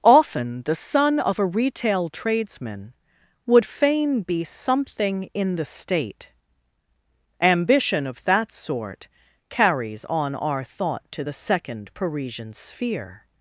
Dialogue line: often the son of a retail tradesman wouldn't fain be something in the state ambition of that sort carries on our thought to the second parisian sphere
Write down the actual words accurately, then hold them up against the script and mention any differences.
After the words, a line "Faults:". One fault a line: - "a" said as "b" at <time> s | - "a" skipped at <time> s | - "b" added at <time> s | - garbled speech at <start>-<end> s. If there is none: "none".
often the son of a retail tradesman would fain be something in the state ambition of that sort carries on our thought to the second parisian sphere
Faults:
- "wouldn't" said as "would" at 3.5 s